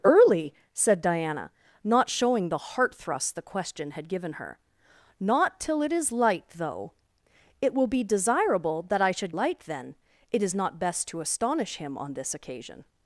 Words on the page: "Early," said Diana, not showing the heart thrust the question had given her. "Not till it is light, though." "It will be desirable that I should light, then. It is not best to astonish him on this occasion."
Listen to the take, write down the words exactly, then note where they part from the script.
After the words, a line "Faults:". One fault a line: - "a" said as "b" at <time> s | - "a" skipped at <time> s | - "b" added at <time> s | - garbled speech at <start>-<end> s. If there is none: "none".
"Early," said Diana, not showing the heart thrust the question had given her. "Not till it is light, though." "It will be desirable that I should light, then. It is not best to astonish him on this occasion."
Faults:
none